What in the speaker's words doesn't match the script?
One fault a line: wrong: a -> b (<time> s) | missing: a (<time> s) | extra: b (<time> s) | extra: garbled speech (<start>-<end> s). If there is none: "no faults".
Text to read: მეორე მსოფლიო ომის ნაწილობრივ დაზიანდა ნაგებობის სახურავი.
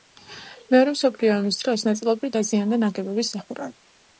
extra: დროს (1.6 s)